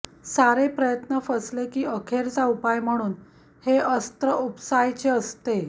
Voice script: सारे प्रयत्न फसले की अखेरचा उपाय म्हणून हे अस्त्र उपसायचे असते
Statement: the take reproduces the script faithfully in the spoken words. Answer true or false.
true